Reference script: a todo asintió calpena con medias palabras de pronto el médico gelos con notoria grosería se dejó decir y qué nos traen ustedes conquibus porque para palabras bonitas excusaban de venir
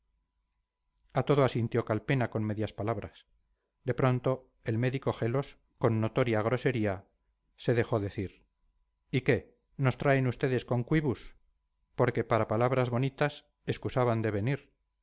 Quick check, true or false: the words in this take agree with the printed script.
true